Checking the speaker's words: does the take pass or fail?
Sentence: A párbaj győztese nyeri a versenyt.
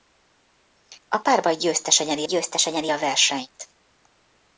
fail